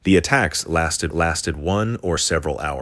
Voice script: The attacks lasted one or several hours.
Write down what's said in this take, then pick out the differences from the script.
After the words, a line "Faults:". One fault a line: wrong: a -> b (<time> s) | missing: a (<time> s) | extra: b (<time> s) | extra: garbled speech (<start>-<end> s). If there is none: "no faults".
The attacks lasted lasted one or several hours.
Faults:
extra: lasted (1.1 s)